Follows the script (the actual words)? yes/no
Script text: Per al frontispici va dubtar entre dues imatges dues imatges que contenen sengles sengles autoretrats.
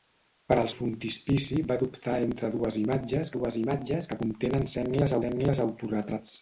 yes